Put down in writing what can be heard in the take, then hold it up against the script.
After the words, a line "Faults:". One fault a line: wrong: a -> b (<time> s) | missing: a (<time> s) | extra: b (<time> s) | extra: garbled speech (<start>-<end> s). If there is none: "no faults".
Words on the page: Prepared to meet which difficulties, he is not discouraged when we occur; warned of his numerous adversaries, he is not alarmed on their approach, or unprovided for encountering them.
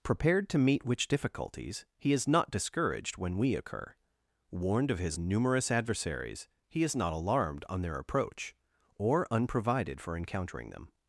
Prepared to meet which difficulties, he is not discouraged when we occur; warned of his numerous adversaries, he is not alarmed on their approach, or unprovided for encountering them.
Faults:
no faults